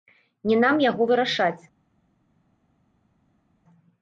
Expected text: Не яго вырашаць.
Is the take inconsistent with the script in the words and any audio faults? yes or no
yes